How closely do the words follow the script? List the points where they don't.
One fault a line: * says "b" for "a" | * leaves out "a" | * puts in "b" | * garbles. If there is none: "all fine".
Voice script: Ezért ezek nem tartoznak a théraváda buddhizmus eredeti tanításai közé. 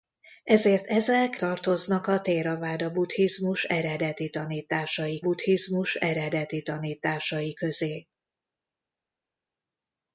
* leaves out "nem"
* puts in "buddhizmus eredeti tanításai"